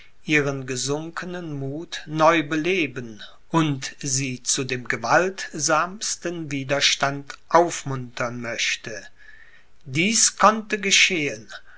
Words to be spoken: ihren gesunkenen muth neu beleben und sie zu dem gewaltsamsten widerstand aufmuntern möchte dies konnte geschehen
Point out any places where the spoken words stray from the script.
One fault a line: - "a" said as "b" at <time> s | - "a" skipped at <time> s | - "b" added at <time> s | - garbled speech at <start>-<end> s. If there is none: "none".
none